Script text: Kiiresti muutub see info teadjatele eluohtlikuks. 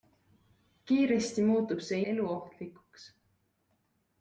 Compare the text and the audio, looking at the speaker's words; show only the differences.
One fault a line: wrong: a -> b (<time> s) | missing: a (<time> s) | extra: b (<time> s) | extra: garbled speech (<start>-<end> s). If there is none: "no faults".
missing: info teadjatele (2.0 s)